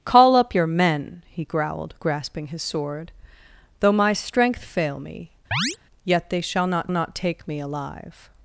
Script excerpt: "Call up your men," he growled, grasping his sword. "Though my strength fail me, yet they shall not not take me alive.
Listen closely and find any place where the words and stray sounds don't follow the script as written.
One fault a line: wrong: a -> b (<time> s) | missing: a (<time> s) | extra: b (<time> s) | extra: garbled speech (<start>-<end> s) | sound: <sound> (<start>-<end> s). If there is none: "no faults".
sound: chirp (5.5-5.8 s)